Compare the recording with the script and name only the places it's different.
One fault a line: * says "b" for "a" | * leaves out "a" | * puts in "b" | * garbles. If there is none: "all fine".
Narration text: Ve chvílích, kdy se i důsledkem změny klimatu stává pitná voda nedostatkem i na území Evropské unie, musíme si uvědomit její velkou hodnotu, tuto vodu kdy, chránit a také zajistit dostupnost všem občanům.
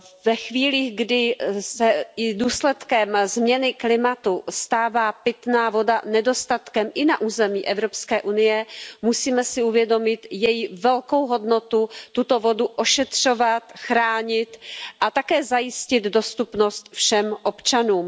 * says "ošetřovat" for "kdy"